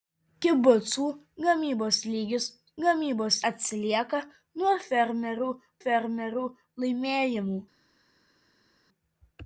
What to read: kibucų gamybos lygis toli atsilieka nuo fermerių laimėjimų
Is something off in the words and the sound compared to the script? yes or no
yes